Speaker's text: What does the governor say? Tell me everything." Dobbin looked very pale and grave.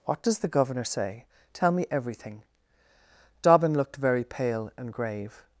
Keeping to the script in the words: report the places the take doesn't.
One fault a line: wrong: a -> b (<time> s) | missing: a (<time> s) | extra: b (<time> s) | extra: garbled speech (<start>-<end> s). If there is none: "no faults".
no faults